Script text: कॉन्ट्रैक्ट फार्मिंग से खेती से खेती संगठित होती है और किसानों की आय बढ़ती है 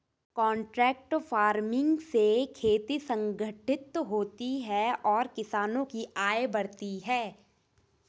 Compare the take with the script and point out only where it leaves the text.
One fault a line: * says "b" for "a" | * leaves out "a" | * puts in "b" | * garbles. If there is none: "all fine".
* leaves out "से खेती"